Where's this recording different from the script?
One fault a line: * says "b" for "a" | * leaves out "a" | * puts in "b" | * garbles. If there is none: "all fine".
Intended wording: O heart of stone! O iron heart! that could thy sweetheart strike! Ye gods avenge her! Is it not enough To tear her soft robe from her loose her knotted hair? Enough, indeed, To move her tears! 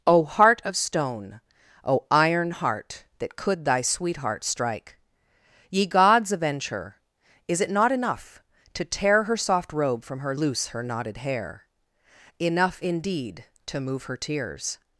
all fine